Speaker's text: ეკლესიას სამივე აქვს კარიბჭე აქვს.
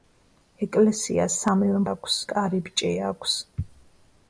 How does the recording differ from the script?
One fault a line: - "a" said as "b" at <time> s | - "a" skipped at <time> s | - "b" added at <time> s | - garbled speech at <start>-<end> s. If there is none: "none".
none